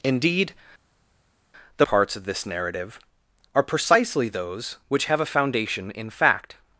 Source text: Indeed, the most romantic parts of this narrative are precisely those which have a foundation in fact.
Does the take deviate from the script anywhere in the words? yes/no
yes